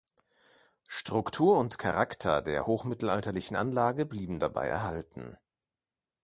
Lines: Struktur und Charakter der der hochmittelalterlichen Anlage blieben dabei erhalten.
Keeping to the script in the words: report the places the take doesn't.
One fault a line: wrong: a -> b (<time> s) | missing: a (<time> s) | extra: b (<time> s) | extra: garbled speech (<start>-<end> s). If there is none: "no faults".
missing: der (2.7 s)